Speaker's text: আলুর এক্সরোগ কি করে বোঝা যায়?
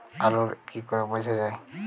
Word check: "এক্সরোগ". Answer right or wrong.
wrong